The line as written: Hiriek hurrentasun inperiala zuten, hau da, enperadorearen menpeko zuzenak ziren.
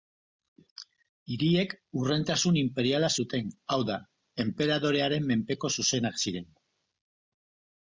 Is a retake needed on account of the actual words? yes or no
no